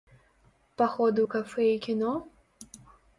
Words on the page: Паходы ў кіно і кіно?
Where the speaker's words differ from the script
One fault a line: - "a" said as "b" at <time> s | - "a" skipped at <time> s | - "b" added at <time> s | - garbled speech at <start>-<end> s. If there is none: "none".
- "кіно" said as "кафэ" at 1.3 s